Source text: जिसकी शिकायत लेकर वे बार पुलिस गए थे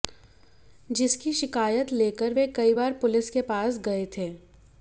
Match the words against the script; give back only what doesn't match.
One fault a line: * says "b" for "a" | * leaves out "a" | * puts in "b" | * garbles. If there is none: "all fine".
* puts in "कई"
* puts in "के पास"